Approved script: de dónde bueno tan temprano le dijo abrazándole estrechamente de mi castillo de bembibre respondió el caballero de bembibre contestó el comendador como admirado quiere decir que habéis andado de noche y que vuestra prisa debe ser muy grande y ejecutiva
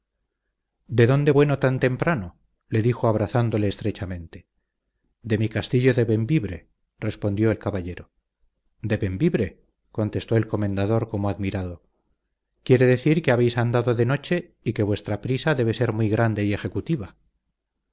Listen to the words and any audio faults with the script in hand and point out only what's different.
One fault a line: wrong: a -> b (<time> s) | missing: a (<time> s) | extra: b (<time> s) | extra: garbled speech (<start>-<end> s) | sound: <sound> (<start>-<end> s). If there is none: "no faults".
no faults